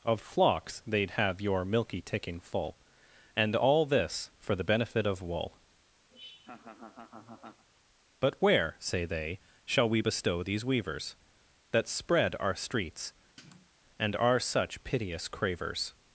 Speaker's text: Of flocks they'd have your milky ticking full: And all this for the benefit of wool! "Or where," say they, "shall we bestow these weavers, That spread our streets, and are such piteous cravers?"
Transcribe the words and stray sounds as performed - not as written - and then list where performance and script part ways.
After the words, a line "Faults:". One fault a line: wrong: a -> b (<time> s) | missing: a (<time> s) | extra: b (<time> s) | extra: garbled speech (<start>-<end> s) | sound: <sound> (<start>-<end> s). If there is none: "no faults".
Of flocks they'd have your milky ticking full: And all this for the benefit of wool! "But where," say they, "shall we bestow these weavers, That spread our streets, and are such piteous cravers?"
Faults:
sound: laugh (6.1-7.6 s)
wrong: Or -> But (8.2 s)
sound: sniff (13.4-13.7 s)